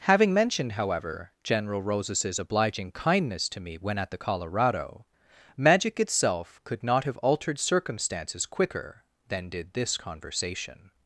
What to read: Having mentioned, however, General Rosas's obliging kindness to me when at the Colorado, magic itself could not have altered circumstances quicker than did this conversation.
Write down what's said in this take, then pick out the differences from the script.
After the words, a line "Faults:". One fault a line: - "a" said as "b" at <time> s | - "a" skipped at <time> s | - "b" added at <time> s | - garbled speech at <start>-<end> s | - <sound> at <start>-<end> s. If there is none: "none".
Having mentioned, however, General Rosas's obliging kindness to me when at the Colorado, magic itself could not have altered circumstances quicker than did this conversation.
Faults:
none